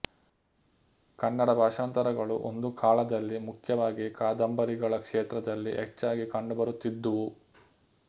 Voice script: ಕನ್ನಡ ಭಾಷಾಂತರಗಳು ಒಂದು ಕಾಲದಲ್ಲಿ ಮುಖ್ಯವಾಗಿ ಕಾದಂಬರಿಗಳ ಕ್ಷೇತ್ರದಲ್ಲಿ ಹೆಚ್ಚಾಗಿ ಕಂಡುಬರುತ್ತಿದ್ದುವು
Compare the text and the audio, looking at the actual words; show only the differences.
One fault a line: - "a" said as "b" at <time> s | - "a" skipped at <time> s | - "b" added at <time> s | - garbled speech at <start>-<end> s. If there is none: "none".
none